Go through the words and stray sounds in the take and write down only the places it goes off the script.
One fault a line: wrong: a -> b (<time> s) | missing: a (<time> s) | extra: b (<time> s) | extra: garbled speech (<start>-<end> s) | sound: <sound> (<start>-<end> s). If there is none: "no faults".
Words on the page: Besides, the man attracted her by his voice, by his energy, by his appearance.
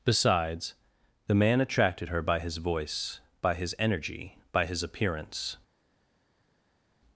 no faults